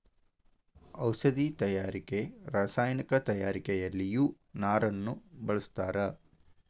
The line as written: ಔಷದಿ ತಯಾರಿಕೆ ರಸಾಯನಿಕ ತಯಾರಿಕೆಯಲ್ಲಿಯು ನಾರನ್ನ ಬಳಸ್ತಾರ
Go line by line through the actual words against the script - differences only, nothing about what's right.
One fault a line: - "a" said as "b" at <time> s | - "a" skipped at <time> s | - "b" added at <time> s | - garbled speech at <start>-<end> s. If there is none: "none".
none